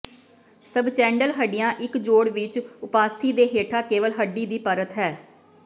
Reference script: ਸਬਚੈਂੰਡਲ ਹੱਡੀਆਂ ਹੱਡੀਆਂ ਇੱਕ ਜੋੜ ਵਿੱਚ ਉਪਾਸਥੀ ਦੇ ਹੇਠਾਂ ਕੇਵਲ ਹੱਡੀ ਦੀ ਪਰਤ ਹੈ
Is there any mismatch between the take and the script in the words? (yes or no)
yes